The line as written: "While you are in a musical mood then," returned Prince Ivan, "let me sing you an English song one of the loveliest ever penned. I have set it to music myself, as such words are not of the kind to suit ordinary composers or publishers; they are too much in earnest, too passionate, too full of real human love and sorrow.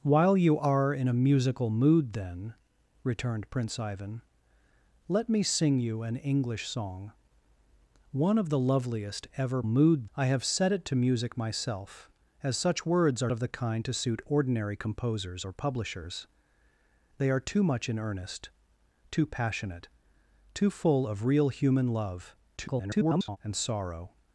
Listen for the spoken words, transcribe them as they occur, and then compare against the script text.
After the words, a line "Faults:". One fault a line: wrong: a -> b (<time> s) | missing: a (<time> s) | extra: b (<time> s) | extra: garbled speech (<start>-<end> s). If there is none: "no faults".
"While you are in a musical mood then," returned Prince Ivan, "let me sing you an English song one of the loveliest ever mood. I have set it to music myself, as such words are of the kind to suit ordinary composers or publishers; they are too much in earnest, too passionate, too full of real human love [garbled] and sorrow.
Faults:
wrong: penned -> mood (9.6 s)
missing: not (13.3 s)
extra: garbled speech (22.6-23.4 s)